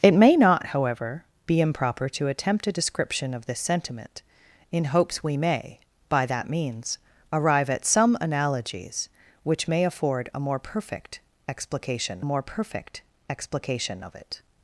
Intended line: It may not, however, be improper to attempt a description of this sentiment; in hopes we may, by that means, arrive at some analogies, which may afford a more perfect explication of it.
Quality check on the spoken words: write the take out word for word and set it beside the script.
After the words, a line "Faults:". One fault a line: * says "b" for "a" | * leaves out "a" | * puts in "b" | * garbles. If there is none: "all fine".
It may not, however, be improper to attempt a description of this sentiment; in hopes we may, by that means, arrive at some analogies, which may afford a more perfect explication more perfect explication of it.
Faults:
* puts in "more perfect explication"